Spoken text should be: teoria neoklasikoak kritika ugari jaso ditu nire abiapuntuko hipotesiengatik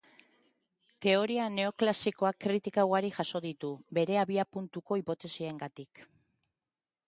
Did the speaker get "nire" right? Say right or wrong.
wrong